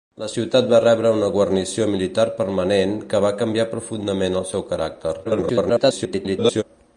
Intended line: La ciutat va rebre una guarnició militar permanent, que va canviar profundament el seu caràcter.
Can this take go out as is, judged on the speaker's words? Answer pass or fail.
fail